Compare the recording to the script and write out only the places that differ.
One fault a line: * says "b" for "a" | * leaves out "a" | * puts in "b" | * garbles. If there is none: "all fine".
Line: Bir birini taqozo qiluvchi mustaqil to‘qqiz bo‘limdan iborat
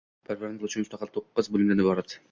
* leaves out "taqozo"